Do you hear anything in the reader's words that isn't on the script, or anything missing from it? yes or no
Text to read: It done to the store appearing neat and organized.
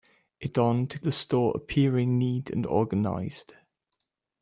no